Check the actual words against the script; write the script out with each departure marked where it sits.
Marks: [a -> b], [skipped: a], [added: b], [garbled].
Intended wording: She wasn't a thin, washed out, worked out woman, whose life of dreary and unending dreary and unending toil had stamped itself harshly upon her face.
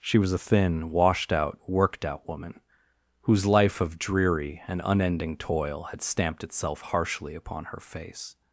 She [wasn't -> was] a thin, washed out, worked out woman, whose life of dreary and unending [skipped: dreary and unending] toil had stamped itself harshly upon her face.